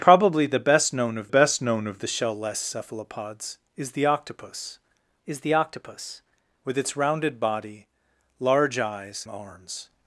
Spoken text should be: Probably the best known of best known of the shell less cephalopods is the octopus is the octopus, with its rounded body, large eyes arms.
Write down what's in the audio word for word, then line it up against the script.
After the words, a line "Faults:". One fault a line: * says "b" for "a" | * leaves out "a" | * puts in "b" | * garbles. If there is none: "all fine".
Probably the best known of best known of the shell less cephalopods is the octopus is the octopus, with its rounded body, large eyes arms.
Faults:
all fine